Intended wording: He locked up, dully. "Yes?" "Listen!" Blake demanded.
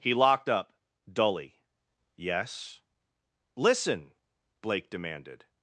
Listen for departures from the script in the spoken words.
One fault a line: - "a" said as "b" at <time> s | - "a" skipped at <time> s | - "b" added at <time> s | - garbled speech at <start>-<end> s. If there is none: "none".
none